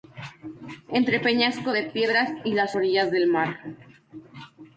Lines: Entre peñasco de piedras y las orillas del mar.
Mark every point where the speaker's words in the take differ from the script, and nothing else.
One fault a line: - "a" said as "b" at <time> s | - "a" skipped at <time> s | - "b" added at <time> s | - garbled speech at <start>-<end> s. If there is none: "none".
none